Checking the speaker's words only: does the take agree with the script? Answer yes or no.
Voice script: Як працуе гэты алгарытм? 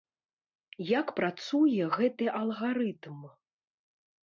yes